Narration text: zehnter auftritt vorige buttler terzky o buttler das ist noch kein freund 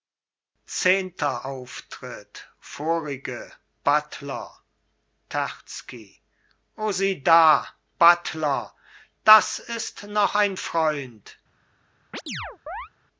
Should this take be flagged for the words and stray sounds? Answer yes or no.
yes